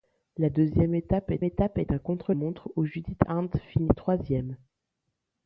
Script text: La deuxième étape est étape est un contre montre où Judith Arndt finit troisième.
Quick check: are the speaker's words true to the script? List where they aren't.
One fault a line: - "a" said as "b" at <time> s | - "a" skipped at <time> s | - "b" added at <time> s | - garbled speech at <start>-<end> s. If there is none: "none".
none